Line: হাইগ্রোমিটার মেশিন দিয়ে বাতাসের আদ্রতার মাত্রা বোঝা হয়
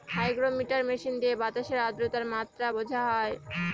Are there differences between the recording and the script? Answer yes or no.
no